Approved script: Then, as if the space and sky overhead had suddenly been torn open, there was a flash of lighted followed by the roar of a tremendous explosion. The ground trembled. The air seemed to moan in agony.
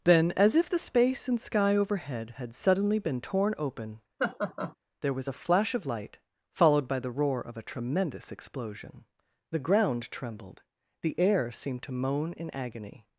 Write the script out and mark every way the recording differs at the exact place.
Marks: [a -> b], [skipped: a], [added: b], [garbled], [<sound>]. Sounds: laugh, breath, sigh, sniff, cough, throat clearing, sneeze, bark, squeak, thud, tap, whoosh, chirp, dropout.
Then, as if the space and sky overhead had suddenly been torn open, [laugh] there was a flash of [lighted -> light] followed by the roar of a tremendous explosion. The ground trembled. The air seemed to moan in agony.